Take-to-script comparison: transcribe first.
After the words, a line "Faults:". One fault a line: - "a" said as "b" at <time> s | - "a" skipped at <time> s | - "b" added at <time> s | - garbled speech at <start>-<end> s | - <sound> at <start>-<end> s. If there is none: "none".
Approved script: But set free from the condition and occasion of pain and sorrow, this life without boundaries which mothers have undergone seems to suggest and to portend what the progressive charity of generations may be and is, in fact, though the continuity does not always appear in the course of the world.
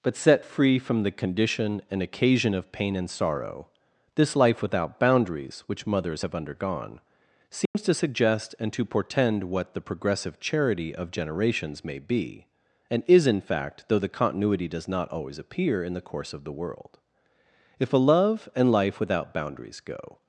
But set free from the condition and occasion of pain and sorrow, this life without boundaries which mothers have undergone seems to suggest and to portend what the progressive charity of generations may be and is, in fact, though the continuity does not always appear in the course of the world. If a love and life without boundaries go
Faults:
- dropout at 7.7-7.7 s
- "If a love and life without boundaries go" added at 17.8 s